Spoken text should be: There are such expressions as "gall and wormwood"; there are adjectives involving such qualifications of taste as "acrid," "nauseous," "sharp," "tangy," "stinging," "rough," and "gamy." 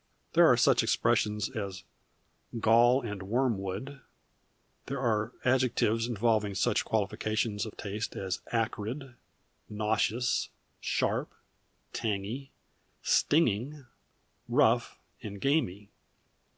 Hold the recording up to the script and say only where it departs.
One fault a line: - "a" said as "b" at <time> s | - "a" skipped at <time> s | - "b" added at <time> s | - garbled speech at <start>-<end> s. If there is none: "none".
none